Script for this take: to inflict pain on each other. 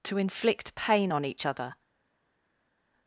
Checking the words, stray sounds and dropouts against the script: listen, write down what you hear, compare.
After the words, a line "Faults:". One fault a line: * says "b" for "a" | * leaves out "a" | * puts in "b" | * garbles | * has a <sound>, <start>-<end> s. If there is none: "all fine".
to inflict pain on each other.
Faults:
all fine